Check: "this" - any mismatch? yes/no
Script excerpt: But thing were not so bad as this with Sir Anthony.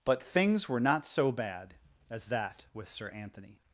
yes